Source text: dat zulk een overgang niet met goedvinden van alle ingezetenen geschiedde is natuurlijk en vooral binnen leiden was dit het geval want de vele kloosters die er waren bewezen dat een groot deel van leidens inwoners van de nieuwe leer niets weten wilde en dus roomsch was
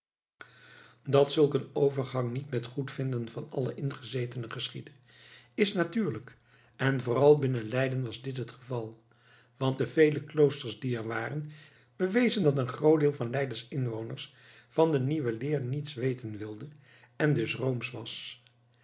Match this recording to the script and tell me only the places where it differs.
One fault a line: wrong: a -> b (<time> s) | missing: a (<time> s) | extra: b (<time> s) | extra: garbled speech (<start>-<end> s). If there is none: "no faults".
no faults